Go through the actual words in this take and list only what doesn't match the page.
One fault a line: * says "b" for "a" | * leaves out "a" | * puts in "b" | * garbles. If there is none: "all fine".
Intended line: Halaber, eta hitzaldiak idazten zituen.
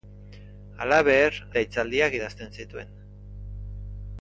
all fine